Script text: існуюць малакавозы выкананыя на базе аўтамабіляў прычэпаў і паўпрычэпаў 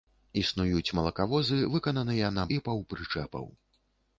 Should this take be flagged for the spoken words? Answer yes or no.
yes